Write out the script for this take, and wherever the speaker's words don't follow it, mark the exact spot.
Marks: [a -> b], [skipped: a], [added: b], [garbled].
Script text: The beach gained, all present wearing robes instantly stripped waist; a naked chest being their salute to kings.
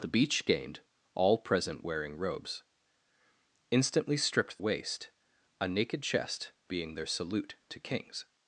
The beach gained, all present wearing robes instantly stripped waist; a naked chest being their salute to kings.